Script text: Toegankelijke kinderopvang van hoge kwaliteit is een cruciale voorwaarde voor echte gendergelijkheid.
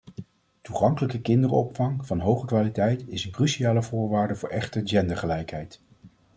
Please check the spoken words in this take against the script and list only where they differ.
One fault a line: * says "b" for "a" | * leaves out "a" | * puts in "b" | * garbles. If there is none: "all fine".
all fine